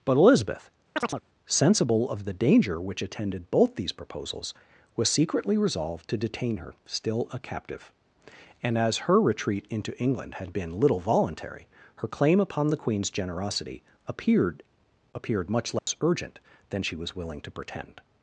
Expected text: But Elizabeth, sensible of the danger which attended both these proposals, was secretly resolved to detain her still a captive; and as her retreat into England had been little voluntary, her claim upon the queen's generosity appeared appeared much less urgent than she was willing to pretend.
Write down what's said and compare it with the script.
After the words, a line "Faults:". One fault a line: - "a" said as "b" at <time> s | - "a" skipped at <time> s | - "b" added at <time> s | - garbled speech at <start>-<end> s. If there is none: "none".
But Elizabeth, sensible of the danger which attended both these proposals, was secretly resolved to detain her still a captive; and as her retreat into England had been little voluntary, her claim upon the queen's generosity appeared appeared much less urgent than she was willing to pretend.
Faults:
none